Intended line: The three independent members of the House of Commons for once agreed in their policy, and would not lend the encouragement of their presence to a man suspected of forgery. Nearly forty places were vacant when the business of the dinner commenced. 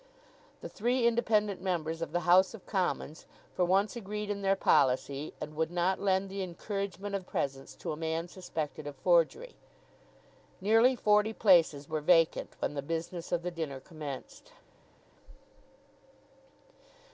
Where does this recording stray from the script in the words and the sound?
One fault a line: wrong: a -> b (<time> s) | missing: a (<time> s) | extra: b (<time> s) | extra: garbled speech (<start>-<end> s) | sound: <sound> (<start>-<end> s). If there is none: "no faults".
missing: their (7.2 s)